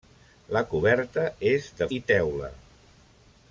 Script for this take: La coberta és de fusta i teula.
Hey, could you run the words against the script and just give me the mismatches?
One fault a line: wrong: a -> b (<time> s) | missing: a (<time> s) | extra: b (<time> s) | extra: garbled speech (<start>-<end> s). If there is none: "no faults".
missing: fusta (1.9 s)